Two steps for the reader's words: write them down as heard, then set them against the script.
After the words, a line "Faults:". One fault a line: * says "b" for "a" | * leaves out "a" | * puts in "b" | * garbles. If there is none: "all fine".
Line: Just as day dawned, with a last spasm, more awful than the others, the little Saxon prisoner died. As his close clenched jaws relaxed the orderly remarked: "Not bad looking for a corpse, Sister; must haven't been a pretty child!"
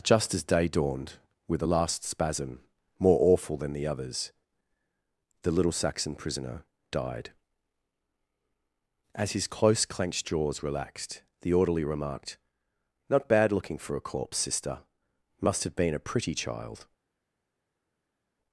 Just as day dawned, with a last spasm, more awful than the others, the little Saxon prisoner died. As his close clenched jaws relaxed the orderly remarked: "Not bad looking for a corpse, Sister; must have been a pretty child!"
Faults:
* says "have" for "haven't"